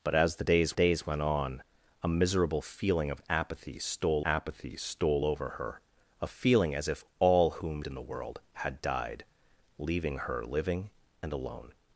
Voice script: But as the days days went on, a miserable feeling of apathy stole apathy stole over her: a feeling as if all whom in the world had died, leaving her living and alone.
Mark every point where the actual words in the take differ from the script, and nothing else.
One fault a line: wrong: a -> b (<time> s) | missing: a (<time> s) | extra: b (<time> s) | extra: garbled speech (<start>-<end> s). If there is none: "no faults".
no faults